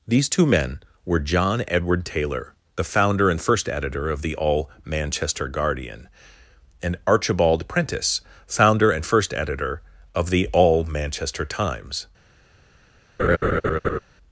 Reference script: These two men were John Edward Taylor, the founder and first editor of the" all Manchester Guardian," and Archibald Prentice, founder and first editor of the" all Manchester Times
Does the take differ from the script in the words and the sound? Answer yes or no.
yes